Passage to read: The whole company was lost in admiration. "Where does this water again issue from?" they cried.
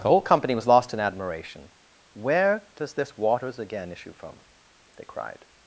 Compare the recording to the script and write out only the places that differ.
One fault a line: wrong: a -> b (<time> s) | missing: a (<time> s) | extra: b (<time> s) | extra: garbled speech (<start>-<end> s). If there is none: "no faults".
wrong: water -> waters (3.2 s)